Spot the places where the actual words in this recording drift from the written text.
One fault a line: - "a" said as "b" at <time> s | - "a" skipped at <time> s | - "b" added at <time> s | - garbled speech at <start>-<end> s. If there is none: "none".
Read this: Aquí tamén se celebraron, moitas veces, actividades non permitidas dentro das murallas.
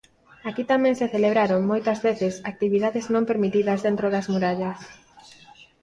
none